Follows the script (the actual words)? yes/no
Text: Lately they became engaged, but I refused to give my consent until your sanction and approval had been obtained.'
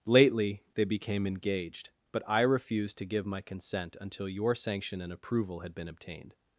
yes